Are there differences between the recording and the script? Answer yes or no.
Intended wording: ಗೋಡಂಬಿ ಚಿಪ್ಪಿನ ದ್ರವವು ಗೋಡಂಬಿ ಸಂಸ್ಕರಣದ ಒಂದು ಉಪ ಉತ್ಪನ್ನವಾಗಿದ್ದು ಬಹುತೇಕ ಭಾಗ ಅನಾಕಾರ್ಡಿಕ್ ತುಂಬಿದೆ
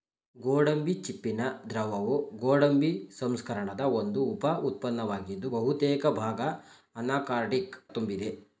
no